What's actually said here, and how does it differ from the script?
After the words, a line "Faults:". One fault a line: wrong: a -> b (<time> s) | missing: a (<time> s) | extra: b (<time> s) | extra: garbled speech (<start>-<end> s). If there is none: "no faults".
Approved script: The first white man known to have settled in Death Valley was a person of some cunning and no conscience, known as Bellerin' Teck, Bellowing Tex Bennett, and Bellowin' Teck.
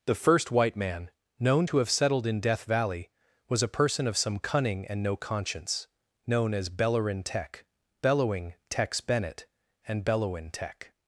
The first white man known to have settled in Death Valley was a person of some cunning and no conscience, known as Bellerin' Teck, Bellowing Tex Bennett, and Bellowin' Teck.
Faults:
no faults